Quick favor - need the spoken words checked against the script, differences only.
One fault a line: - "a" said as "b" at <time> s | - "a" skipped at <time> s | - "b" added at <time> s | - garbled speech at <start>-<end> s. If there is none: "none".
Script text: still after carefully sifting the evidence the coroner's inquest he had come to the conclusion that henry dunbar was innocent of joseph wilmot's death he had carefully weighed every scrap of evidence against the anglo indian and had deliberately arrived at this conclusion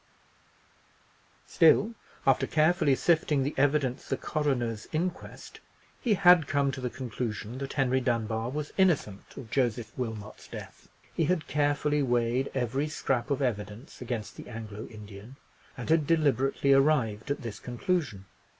none